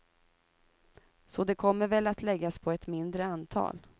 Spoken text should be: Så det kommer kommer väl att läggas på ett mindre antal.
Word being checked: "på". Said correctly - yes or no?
yes